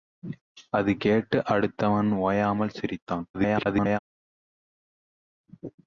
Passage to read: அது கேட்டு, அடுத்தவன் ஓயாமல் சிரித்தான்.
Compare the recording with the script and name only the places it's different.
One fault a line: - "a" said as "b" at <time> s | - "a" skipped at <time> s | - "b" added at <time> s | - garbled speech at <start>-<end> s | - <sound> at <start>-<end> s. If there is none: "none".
- garbled speech at 3.3-4.0 s